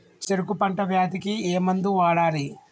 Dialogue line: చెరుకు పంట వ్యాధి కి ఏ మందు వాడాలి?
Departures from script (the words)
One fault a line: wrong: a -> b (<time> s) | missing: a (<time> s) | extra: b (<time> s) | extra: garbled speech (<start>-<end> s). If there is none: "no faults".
no faults